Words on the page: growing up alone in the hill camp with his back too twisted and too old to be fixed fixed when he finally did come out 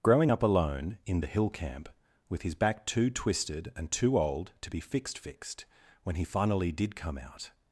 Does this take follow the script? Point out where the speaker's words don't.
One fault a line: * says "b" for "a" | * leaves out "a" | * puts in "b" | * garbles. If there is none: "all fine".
all fine